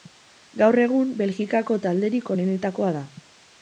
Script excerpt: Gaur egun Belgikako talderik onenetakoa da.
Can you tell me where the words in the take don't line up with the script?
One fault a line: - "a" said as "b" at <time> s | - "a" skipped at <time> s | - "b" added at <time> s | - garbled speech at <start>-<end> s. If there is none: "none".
none